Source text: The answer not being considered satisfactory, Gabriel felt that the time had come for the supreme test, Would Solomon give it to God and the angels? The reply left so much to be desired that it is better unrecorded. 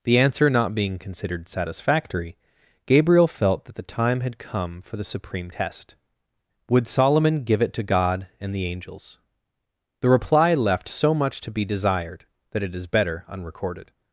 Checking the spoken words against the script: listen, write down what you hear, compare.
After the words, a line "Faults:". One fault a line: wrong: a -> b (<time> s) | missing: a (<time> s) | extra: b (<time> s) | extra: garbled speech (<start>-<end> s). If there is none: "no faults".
The answer not being considered satisfactory, Gabriel felt that the time had come for the supreme test, Would Solomon give it to God and the angels? The reply left so much to be desired that it is better unrecorded.
Faults:
no faults